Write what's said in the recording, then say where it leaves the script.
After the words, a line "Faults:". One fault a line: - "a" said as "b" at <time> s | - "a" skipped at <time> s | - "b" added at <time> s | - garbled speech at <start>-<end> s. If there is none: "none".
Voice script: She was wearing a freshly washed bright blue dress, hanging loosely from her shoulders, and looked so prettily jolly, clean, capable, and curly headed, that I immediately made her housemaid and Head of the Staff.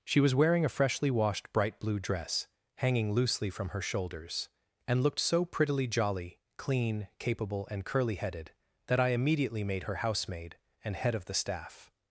She was wearing a freshly washed bright blue dress, hanging loosely from her shoulders, and looked so prettily jolly, clean, capable, and curly headed, that I immediately made her housemaid and Head of the Staff.
Faults:
none